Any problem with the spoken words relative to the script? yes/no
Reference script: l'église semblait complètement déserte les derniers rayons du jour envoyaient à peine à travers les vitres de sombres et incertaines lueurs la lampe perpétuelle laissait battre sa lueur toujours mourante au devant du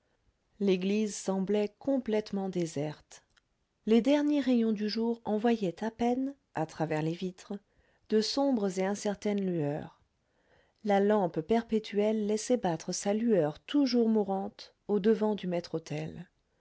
no